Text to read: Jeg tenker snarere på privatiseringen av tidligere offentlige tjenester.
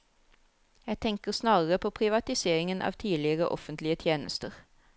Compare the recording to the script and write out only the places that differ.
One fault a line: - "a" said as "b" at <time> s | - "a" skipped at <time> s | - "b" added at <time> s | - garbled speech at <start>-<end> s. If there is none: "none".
none